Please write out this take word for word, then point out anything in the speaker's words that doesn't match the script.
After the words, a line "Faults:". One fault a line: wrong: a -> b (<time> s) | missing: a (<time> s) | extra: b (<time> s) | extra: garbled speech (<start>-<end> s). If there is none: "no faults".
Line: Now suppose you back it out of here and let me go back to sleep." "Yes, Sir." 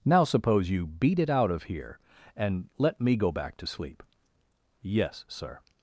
Now suppose you beat it out of here and let me go back to sleep." "Yes, Sir."
Faults:
wrong: back -> beat (0.9 s)